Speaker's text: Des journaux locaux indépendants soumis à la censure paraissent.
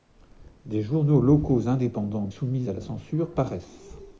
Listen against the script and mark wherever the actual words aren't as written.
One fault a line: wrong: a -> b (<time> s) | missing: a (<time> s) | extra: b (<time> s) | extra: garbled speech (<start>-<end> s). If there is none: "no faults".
no faults